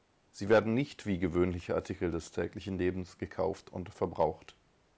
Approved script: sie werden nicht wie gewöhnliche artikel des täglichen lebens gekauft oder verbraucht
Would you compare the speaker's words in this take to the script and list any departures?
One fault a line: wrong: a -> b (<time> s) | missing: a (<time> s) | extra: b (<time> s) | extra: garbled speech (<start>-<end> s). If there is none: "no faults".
wrong: oder -> und (3.7 s)